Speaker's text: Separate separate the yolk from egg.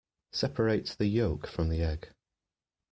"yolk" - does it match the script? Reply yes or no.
yes